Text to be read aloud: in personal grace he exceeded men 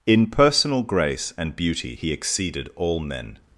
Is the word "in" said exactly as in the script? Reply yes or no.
yes